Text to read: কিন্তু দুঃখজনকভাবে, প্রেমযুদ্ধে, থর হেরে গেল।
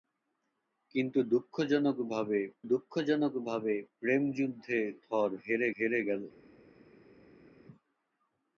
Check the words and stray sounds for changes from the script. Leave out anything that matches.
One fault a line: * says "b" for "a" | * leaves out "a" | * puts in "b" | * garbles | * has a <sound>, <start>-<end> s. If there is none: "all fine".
* puts in "দুঃখজনকভাবে"
* puts in "হেরে"